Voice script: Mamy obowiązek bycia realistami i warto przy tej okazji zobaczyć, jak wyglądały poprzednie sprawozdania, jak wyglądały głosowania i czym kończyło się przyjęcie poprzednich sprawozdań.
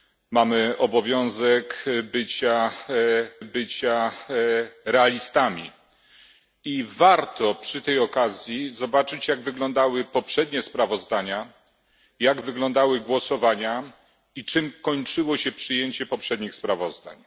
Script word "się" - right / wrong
right